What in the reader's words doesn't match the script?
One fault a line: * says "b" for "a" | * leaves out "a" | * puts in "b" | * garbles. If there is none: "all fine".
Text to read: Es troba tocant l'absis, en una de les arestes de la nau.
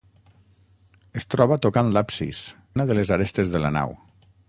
* leaves out "en"